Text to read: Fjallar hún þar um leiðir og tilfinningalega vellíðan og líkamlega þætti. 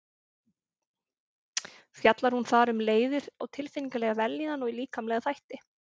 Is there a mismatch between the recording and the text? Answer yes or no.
no